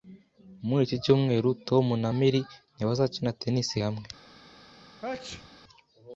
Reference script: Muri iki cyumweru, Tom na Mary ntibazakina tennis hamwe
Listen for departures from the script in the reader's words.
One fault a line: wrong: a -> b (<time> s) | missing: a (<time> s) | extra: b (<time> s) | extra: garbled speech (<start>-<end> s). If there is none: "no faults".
no faults